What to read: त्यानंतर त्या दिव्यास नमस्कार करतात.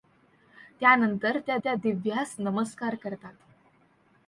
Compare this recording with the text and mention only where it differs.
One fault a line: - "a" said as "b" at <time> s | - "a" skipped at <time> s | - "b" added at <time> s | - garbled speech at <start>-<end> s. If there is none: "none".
- "त्या" added at 1.6 s